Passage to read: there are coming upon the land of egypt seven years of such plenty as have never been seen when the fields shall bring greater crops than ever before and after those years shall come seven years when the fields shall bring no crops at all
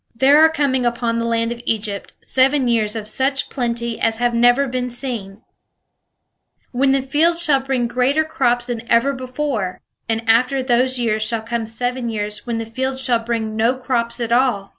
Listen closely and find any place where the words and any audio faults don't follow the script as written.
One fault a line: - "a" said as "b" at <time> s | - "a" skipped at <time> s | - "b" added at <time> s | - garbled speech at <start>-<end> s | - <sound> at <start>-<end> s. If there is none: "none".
none